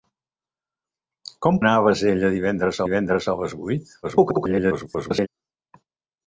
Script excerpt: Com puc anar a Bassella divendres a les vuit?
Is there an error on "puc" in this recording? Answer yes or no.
yes